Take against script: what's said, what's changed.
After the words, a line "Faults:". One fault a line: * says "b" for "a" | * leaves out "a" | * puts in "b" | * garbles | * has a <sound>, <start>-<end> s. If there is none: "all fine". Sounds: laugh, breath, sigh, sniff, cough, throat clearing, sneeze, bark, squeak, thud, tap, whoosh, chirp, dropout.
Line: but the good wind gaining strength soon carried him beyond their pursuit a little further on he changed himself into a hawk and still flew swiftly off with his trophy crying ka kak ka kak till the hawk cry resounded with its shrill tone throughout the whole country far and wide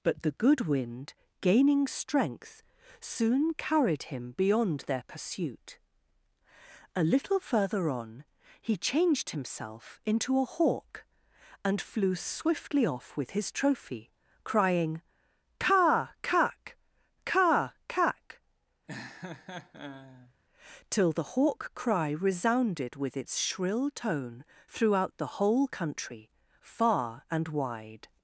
but the good wind gaining strength soon carried him beyond their pursuit a little further on he changed himself into a hawk and flew swiftly off with his trophy crying ka kak ka kak till the hawk cry resounded with its shrill tone throughout the whole country far and wide
Faults:
* leaves out "still"
* has a laugh, 18.9-20.3 s